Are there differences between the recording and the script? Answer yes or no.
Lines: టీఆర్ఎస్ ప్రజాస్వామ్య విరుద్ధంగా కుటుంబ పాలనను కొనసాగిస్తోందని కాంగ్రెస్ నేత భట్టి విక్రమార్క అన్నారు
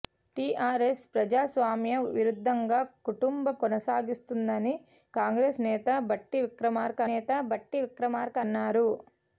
yes